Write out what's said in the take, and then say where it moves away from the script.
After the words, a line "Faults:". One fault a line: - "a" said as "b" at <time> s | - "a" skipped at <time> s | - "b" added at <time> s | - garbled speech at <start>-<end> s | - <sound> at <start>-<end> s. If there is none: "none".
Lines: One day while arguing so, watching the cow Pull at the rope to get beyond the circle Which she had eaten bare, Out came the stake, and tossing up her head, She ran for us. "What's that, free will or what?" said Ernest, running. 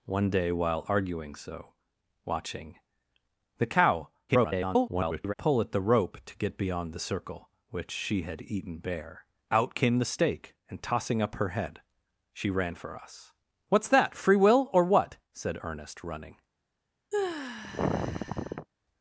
One day while arguing so, watching the cow [garbled] Pull at the rope to get beyond the circle Which she had eaten bare, Out came the stake, and tossing up her head, She ran for us. "What's that, free will or what?" said Ernest, running.
Faults:
- garbled speech at 4.3-5.3 s
- sigh at 17.1-18.7 s